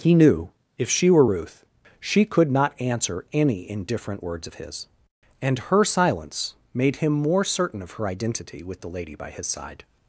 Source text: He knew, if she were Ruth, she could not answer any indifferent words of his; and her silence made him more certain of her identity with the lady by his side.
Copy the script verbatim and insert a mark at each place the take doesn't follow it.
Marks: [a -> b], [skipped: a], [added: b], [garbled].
He knew, if she were Ruth, she could not answer any indifferent words of his; and her silence made him more certain of her identity with the lady by his side.